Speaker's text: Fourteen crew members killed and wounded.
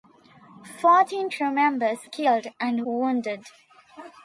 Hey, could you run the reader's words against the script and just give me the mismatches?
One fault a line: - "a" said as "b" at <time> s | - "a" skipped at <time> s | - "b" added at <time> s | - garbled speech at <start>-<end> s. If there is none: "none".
none